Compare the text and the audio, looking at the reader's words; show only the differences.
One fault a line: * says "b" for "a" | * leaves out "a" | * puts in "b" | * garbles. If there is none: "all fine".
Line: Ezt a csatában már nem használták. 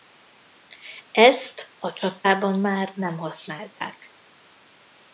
all fine